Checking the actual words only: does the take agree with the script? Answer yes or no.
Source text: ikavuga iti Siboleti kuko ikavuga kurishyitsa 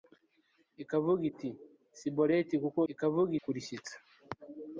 yes